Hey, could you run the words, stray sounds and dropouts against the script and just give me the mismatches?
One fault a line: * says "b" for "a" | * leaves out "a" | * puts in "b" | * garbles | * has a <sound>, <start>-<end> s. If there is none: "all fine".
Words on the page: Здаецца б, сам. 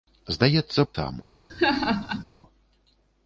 * has a laugh, 1.5-2.2 s